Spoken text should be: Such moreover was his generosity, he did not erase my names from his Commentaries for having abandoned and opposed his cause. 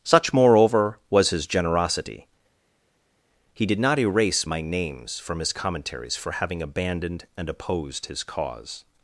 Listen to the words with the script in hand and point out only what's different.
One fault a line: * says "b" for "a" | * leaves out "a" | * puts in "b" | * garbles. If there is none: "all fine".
all fine